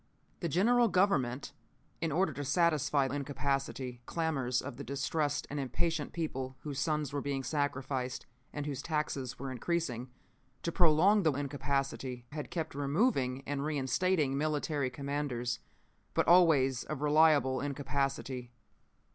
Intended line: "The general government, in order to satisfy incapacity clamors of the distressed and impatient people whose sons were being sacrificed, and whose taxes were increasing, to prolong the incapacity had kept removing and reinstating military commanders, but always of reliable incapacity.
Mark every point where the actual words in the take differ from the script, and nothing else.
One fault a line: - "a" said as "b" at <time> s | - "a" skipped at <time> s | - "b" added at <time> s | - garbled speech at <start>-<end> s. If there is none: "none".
none